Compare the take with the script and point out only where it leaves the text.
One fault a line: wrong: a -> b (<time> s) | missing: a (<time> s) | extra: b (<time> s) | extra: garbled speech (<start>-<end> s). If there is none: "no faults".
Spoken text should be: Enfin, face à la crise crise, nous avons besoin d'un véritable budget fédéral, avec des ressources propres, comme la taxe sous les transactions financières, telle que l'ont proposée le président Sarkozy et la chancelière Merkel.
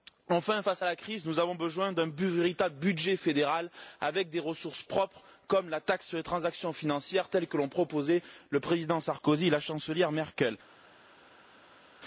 missing: crise (1.3 s)
wrong: sous -> sur (6.1 s)